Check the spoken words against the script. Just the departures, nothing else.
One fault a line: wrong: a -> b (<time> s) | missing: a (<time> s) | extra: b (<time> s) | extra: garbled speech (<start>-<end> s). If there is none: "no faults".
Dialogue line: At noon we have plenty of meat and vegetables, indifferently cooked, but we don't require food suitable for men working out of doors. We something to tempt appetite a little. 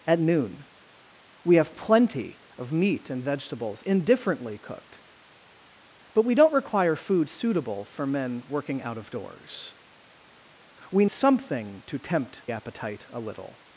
no faults